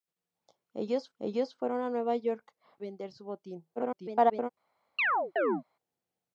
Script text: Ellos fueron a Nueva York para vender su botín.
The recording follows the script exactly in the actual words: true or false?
false